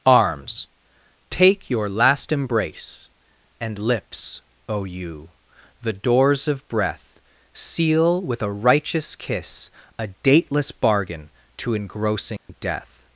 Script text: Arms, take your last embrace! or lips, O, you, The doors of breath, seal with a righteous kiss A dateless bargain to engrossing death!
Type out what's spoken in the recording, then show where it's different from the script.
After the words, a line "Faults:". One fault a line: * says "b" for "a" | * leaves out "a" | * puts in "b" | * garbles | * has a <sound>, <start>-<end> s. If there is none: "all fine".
Arms, take your last embrace! and lips, O, you, The doors of breath, seal with a righteous kiss A dateless bargain to engrossing death!
Faults:
* says "and" for "or"
* has a dropout, 12.4-12.5 s